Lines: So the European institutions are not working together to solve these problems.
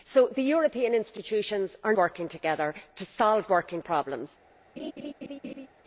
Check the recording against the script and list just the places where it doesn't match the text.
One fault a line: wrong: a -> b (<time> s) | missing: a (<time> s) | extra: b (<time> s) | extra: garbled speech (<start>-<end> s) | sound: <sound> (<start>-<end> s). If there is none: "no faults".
missing: not (1.9 s)
wrong: these -> working (3.5 s)
sound: laugh (4.8-5.7 s)